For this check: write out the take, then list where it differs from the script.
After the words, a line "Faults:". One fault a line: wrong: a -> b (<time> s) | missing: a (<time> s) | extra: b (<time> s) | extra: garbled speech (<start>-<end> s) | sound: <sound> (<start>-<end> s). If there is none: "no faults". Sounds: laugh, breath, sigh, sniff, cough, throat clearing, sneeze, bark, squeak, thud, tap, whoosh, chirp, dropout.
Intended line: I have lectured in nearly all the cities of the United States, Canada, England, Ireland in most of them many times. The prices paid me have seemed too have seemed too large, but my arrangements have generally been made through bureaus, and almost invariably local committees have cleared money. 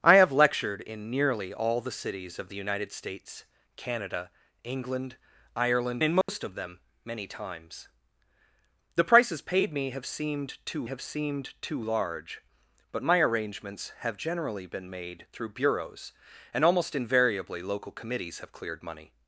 I have lectured in nearly all the cities of the United States, Canada, England, Ireland in most of them many times. The prices paid me have seemed too have seemed too large, but my arrangements have generally been made through bureaus, and almost invariably local committees have cleared money.
Faults:
sound: dropout (6.2-6.3 s)